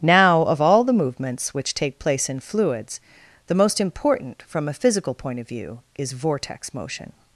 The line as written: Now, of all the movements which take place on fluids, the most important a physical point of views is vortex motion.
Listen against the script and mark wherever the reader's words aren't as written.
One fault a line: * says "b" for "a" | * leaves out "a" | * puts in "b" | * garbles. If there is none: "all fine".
* says "in" for "on"
* puts in "from"
* says "view" for "views"